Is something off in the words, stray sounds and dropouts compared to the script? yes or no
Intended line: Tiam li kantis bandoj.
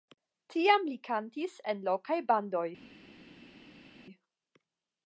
yes